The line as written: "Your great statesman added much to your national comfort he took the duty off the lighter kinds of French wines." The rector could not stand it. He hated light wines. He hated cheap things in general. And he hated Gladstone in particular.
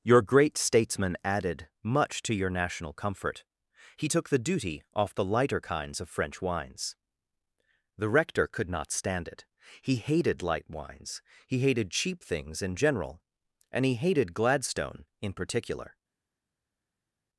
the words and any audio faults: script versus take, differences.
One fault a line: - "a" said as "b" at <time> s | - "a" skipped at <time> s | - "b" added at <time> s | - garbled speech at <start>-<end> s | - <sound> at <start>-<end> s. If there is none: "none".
none